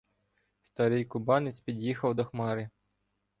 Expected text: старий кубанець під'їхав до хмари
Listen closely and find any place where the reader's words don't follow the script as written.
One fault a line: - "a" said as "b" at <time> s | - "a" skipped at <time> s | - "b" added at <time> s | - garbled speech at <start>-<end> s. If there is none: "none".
none